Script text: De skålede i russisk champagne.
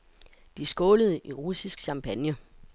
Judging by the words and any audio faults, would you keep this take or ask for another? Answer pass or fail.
pass